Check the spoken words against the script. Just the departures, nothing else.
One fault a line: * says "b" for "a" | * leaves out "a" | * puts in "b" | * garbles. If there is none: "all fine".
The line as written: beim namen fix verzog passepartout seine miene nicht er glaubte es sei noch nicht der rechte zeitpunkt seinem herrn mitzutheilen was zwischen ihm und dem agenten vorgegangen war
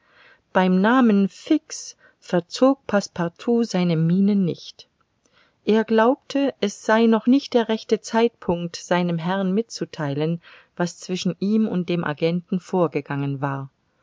all fine